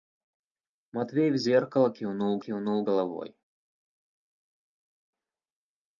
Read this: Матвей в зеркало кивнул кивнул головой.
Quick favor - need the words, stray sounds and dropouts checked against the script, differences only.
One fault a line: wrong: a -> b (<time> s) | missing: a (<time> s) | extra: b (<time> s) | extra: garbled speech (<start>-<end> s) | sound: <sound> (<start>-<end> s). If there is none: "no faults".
no faults